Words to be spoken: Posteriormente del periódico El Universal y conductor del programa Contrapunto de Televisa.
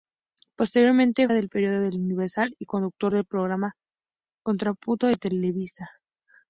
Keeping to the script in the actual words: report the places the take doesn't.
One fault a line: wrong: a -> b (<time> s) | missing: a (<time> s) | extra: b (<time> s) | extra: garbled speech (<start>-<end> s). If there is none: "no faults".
no faults